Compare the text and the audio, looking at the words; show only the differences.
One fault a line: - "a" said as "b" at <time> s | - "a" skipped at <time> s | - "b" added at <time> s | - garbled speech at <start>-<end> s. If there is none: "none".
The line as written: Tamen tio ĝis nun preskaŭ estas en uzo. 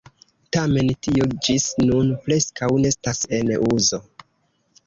none